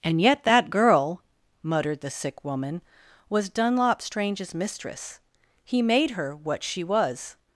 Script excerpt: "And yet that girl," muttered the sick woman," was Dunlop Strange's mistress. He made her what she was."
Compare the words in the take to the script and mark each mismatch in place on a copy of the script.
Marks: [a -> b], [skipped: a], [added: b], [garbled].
"And yet that girl," muttered the sick woman," was Dunlop Strange's mistress. He made her what she was."